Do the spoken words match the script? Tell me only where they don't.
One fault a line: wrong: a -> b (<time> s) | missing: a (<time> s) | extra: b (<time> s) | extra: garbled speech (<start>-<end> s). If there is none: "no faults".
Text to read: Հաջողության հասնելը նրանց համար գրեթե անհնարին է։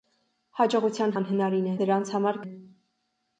wrong: հասնելը -> անհնարին (1.2 s)
missing: գրեթե անհնարին (2.4 s)